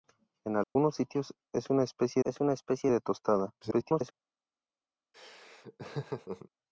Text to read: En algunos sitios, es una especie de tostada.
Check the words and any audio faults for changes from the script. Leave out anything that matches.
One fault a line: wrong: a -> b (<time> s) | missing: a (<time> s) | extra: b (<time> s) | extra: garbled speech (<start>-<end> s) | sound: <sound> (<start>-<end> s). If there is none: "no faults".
sound: dropout (0.6-0.8 s)
extra: es una especie (2.2 s)
extra: garbled speech (3.6-4.1 s)
sound: laugh (5.1-6.5 s)